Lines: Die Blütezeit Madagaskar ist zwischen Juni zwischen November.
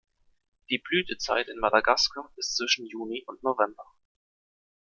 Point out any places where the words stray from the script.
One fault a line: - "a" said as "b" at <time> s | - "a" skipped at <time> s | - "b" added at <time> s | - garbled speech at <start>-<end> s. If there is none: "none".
- "in" added at 1.5 s
- "zwischen" said as "und" at 3.2 s